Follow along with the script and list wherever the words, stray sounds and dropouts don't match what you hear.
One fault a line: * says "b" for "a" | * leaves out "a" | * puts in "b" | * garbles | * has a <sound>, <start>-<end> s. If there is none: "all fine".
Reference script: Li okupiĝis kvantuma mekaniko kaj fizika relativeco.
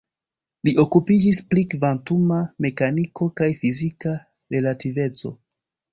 * puts in "pri"